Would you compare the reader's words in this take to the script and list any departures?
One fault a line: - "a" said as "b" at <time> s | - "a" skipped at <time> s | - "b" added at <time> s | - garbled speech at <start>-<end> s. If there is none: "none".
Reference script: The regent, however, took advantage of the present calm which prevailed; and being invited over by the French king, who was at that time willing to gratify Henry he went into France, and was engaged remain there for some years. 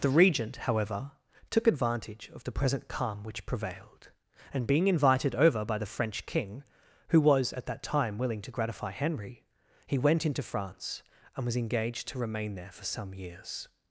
- "to" added at 12.1 s